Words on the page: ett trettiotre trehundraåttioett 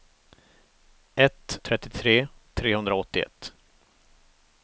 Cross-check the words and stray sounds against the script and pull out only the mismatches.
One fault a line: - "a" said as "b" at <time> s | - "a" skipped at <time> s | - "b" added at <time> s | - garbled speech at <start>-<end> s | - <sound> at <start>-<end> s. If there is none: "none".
none